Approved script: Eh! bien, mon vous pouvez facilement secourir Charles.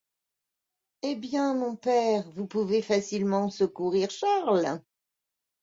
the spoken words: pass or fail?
fail